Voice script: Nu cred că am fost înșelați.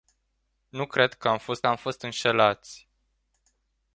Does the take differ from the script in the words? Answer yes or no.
yes